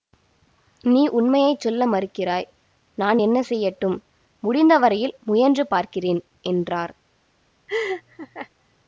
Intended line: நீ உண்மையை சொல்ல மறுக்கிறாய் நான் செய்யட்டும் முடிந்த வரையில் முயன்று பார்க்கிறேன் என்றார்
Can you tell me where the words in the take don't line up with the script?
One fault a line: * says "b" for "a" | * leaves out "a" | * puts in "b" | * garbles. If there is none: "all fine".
* puts in "என்ன"